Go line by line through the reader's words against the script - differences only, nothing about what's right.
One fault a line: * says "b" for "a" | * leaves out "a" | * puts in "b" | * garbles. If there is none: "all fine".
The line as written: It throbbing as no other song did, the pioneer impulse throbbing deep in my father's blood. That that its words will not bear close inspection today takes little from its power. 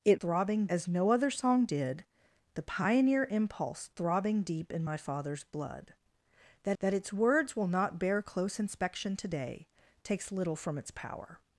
all fine